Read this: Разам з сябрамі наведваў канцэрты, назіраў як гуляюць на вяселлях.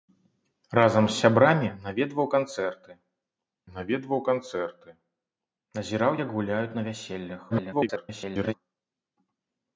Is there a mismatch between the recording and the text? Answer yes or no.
yes